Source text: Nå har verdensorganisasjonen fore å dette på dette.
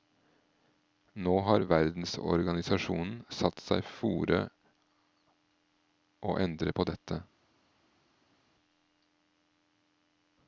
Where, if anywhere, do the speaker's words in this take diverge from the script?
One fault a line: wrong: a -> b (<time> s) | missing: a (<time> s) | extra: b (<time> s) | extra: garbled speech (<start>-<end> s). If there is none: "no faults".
extra: satt seg (3.4 s)
wrong: dette -> endre (6.4 s)